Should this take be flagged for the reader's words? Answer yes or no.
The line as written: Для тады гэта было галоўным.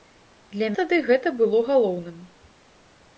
no